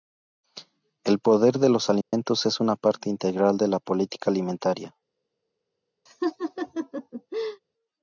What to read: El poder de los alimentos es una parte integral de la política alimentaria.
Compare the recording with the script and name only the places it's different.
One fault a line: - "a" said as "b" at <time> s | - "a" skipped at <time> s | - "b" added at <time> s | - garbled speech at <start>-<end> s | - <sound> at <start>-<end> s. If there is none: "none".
- dropout at 2.0-2.1 s
- laugh at 6.1-7.6 s